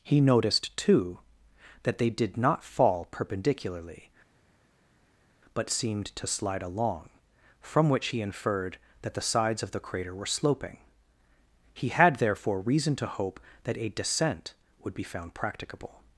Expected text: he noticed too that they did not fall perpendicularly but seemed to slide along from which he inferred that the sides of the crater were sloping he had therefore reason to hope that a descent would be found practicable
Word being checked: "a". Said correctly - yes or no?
yes